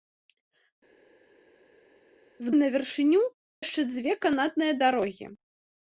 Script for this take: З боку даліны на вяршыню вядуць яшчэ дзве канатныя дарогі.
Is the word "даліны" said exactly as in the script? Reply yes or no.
no